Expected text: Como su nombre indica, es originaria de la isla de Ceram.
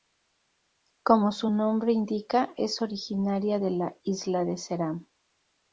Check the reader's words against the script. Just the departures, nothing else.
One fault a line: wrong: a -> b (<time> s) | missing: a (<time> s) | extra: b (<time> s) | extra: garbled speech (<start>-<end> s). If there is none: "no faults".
no faults